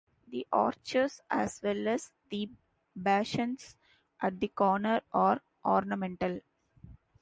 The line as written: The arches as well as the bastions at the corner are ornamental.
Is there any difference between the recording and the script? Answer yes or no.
no